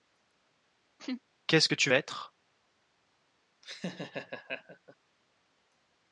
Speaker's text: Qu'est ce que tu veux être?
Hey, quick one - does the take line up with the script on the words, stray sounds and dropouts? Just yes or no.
no